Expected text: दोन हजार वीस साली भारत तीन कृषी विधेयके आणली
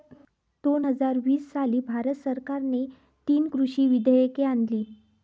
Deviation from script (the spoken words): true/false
true